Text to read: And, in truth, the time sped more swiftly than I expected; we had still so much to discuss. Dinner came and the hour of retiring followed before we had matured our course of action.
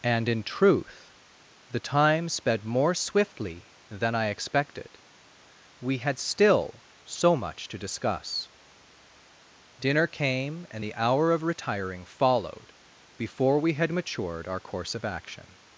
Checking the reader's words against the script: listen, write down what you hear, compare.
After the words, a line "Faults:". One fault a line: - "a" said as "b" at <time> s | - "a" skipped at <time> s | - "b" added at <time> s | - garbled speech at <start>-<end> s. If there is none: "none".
And, in truth, the time sped more swiftly than I expected; we had still so much to discuss. Dinner came and the hour of retiring followed before we had matured our course of action.
Faults:
none